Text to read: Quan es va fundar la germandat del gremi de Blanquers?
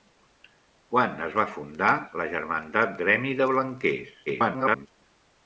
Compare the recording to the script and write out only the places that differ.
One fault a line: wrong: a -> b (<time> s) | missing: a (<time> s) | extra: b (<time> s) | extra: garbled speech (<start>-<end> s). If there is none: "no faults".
missing: del (3.0 s)
extra: garbled speech (4.3-4.9 s)